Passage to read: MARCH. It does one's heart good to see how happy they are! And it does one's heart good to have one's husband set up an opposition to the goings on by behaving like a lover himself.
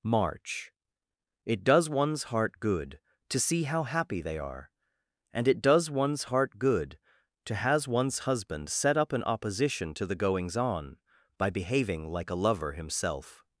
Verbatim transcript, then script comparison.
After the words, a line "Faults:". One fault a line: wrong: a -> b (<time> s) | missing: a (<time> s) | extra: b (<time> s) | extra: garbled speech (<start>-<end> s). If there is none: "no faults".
MARCH. It does one's heart good to see how happy they are! And it does one's heart good to has one's husband set up an opposition to the goings on by behaving like a lover himself.
Faults:
wrong: have -> has (7.5 s)